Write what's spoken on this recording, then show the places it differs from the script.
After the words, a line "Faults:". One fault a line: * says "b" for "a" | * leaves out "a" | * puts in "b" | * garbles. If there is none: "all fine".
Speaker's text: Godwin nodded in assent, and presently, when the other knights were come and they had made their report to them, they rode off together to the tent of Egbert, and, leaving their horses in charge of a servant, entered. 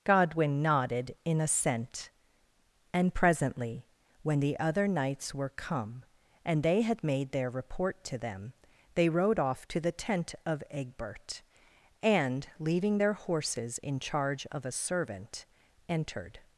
Godwin nodded in assent, and presently, when the other knights were come and they had made their report to them, they rode off to the tent of Egbert, and, leaving their horses in charge of a servant, entered.
Faults:
* leaves out "together"